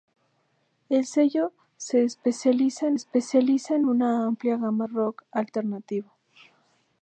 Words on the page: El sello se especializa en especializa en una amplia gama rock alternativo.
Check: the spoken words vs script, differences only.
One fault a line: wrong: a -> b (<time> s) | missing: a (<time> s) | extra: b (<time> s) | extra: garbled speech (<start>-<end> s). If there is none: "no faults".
no faults